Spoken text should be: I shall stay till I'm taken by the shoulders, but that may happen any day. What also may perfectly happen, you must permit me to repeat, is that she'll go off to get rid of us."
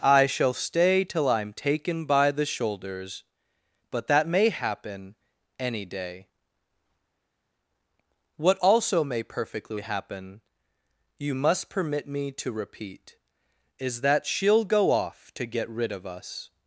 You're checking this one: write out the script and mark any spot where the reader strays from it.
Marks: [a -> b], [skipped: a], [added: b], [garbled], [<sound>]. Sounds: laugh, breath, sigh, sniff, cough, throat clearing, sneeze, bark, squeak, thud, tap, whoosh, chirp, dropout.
I shall stay till I'm taken by the shoulders, but that may happen any day. What also may perfectly happen, you must permit me to repeat, is that she'll go off to get rid of us."